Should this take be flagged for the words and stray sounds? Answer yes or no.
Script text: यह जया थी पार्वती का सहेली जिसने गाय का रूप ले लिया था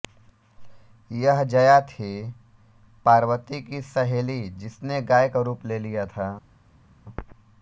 yes